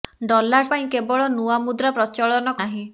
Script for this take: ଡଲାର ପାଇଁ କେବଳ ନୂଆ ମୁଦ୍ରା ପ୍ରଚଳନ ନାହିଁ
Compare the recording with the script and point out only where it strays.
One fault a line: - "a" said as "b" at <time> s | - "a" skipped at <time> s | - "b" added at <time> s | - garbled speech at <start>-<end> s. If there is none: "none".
none